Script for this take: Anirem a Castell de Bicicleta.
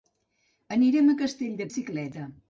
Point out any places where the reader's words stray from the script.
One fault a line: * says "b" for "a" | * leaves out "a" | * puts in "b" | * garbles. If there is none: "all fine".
all fine